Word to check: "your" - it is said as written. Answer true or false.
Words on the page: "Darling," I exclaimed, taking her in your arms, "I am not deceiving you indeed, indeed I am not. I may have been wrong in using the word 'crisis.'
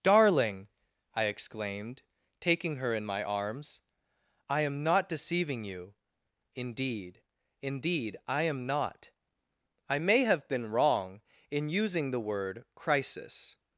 false